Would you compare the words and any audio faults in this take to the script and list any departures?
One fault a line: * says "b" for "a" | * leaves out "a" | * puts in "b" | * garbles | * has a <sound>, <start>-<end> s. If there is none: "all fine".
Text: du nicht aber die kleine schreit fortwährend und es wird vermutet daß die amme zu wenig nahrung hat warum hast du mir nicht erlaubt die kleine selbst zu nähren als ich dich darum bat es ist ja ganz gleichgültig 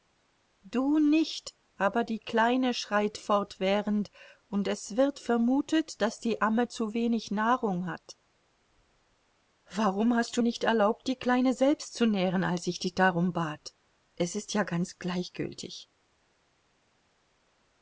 * leaves out "mir"